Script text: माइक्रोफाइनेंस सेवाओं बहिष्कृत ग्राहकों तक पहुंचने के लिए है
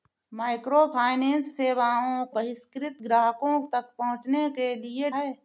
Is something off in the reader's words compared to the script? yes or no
no